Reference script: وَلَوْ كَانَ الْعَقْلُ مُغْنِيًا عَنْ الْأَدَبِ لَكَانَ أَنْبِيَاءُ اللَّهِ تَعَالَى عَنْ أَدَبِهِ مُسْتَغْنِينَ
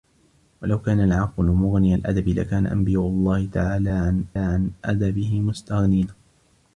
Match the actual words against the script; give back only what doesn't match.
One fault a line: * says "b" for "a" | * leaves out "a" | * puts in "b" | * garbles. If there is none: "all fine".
* leaves out "عَنْ"
* puts in "عَنْ"